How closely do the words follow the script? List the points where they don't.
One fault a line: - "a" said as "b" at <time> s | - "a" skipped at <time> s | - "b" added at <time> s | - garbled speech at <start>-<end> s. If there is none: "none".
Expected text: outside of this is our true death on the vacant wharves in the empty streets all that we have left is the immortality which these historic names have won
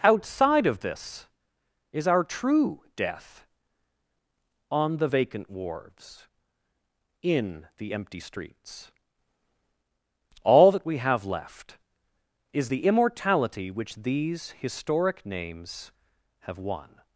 none